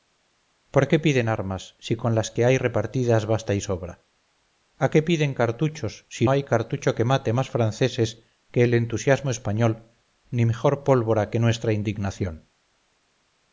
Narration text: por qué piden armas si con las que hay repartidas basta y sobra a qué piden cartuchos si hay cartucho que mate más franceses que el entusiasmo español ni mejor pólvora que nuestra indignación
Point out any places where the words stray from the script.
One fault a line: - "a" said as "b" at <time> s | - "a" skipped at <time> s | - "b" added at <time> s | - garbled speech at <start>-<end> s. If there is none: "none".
none